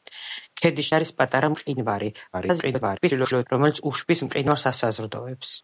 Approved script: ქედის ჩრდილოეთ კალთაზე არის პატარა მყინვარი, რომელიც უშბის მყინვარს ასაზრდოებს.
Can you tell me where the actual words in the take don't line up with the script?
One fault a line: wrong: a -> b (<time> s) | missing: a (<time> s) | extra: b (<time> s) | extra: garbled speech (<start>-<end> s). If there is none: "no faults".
missing: ჩრდილოეთ კალთაზე (0.9 s)
extra: garbled speech (2.3-3.5 s)